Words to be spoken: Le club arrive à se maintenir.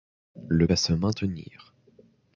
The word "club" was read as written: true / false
false